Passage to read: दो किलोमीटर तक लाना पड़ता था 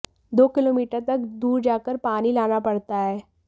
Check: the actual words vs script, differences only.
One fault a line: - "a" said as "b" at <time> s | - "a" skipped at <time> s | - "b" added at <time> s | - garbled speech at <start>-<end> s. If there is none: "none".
- "दूर जाकर पानी" added at 1.4 s
- "था" said as "है" at 3.0 s